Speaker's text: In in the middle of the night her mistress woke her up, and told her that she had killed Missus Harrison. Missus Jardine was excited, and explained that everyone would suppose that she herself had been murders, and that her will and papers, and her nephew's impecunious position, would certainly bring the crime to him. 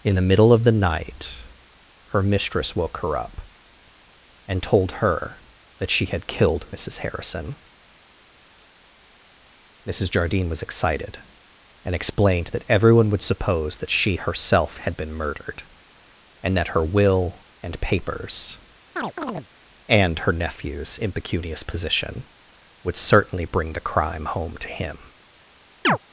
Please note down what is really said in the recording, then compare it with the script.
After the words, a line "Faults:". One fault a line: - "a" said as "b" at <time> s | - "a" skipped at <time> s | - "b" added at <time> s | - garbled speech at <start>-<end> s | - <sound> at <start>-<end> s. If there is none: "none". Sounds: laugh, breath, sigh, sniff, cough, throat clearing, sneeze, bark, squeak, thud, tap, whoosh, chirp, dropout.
In the middle of the night her mistress woke her up, and told her that she had killed Missus Harrison. Missus Jardine was excited, and explained that everyone would suppose that she herself had been murdered, and that her will and papers, and her nephew's impecunious position, would certainly bring the crime home to him.
Faults:
- "in" skipped at 0.1 s
- "murders" said as "murdered" at 15.1 s
- chirp at 19.0-19.5 s
- "home" added at 24.3 s
- chirp at 25.8-26.0 s